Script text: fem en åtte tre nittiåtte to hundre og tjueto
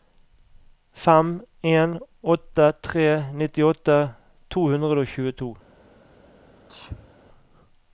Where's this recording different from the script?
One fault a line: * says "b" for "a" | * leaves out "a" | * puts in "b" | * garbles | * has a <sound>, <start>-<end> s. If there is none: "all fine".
* has a sneeze, 6.7-7.1 s